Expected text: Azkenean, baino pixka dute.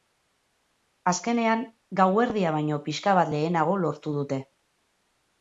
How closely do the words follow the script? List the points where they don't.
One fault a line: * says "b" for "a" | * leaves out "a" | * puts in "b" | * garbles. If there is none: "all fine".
* puts in "gauerdia"
* puts in "bat lehenago lortu"